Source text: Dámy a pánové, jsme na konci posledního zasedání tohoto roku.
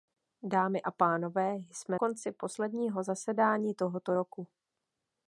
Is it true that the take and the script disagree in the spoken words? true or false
true